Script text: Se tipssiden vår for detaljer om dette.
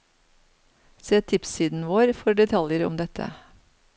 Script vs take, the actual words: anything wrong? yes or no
no